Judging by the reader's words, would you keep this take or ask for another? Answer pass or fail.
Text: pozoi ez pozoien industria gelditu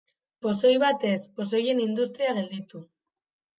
fail